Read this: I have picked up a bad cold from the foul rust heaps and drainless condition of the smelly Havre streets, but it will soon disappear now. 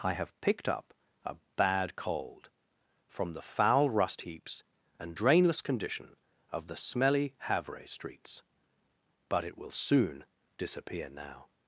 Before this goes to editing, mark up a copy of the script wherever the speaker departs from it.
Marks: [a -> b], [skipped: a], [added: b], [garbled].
I have picked up a bad cold from the foul rust heaps and drainless condition of the smelly Havre streets, but it will soon disappear now.